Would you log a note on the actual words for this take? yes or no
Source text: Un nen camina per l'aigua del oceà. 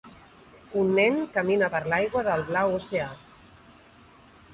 yes